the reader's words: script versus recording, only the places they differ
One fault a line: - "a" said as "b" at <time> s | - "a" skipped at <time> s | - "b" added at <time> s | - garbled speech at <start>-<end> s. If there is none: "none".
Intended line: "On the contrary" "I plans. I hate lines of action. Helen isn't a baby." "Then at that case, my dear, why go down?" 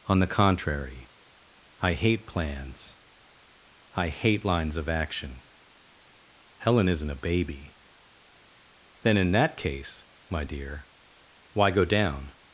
- "hate" added at 1.9 s
- "at" said as "in" at 9.2 s